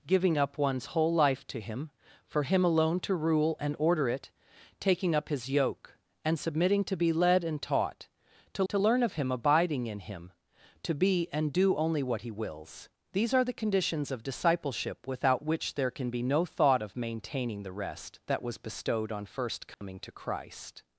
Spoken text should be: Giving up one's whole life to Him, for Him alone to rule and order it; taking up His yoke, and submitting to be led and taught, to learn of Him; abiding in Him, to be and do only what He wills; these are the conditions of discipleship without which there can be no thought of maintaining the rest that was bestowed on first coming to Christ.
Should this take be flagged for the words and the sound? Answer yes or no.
yes